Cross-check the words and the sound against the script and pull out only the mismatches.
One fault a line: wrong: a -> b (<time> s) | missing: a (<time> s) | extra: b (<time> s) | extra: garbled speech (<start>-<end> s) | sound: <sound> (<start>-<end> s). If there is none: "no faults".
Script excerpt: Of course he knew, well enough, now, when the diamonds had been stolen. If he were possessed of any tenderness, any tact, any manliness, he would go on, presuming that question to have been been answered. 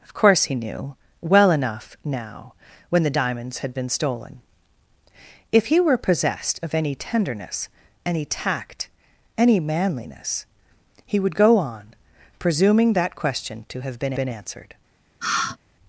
sound: sigh (15.2-15.6 s)